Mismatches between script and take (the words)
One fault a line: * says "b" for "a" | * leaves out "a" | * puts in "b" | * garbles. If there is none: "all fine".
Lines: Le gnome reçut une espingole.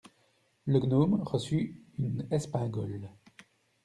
all fine